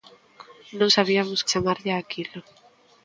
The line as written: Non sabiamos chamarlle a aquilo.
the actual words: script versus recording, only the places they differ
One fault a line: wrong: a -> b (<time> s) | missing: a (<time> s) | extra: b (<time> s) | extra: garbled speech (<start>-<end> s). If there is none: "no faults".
no faults